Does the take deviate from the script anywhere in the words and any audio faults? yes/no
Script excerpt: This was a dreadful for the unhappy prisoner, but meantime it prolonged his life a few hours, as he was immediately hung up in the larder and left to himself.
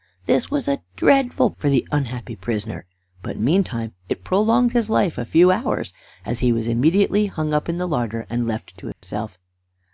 yes